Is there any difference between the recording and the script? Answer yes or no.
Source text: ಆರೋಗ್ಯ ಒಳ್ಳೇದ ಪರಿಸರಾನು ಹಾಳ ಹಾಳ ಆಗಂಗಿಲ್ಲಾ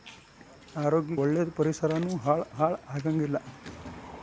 no